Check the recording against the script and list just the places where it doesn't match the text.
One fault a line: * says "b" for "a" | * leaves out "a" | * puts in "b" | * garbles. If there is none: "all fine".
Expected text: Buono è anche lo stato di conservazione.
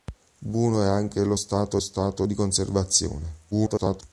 * puts in "stato"
* garbles